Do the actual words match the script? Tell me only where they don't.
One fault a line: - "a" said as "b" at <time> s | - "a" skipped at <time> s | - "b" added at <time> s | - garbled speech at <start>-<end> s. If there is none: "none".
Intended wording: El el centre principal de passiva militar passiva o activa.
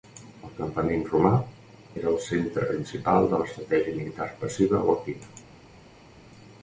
- "campament romà era" added at 0.6 s
- "passiva" said as "l'estratègia" at 3.4 s